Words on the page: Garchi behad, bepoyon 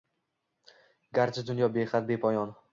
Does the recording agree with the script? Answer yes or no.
no